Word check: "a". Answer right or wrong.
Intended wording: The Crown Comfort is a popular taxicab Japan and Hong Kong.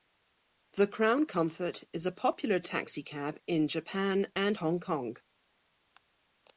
right